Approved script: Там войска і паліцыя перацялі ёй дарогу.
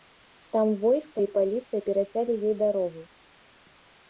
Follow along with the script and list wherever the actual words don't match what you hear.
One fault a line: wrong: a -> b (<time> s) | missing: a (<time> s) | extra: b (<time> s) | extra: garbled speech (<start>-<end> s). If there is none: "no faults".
no faults